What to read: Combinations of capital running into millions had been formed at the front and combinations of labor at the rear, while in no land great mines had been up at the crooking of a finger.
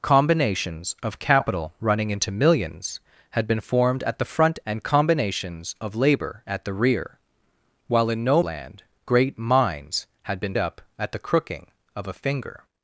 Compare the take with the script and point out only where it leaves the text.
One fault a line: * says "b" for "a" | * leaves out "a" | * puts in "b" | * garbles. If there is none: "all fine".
all fine